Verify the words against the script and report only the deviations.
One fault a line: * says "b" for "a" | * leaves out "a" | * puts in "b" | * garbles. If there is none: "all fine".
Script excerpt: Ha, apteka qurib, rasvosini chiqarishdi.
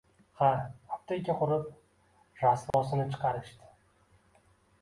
all fine